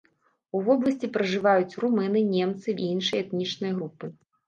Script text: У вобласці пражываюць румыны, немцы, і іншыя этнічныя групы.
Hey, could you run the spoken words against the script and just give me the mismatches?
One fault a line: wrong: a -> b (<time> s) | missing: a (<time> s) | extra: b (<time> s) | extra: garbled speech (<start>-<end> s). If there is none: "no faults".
no faults